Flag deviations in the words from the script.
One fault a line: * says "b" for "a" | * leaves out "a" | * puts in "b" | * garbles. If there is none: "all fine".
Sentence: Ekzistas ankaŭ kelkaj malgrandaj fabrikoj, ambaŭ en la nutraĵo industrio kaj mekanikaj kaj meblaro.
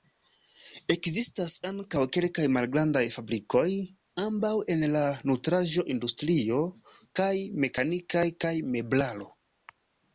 all fine